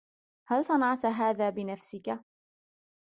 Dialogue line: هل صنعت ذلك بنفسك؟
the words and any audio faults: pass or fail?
fail